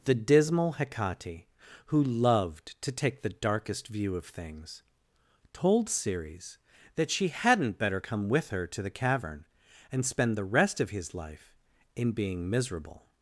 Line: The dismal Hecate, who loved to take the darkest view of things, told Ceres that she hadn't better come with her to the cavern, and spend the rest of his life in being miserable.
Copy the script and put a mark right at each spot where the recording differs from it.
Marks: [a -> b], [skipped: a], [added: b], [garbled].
The dismal Hecate, who loved to take the darkest view of things, told Ceres that she hadn't better come with her to the cavern, and spend the rest of his life in being miserable.